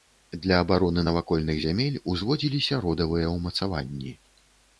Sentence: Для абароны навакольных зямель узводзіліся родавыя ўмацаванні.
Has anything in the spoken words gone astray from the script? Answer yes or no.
no